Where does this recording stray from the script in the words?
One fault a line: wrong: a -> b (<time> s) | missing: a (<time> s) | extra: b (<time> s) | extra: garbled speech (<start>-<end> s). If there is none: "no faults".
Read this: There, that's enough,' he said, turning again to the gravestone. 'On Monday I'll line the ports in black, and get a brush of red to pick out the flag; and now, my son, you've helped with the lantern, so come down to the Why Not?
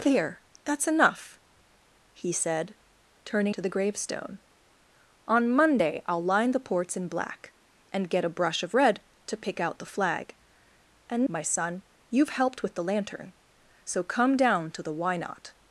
missing: again (3.5 s)
missing: now (11.3 s)